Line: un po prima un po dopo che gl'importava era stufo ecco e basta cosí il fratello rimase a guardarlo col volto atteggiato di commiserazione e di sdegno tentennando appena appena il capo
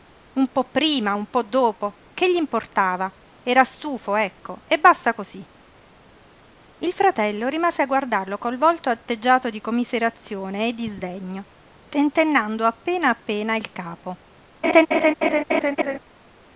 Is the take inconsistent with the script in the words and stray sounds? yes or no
yes